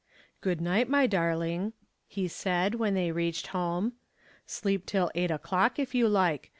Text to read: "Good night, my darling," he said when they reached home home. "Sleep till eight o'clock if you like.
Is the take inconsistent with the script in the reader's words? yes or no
yes